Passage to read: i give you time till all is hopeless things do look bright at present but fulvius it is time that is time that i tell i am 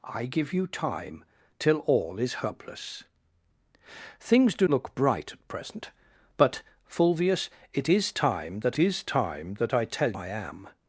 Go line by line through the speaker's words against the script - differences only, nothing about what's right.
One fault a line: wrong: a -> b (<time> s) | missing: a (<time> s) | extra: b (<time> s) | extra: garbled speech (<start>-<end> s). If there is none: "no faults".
no faults